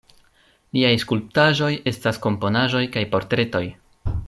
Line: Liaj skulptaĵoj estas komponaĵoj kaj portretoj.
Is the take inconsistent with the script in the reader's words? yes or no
no